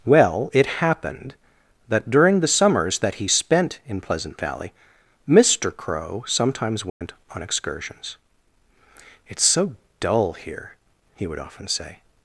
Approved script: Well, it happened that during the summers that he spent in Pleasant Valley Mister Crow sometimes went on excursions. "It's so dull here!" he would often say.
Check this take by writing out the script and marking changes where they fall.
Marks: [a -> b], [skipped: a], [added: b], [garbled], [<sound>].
Well, it happened that during the summers that he spent in Pleasant Valley Mister Crow sometimes went [dropout] on excursions. "It's so dull here!" he would often say.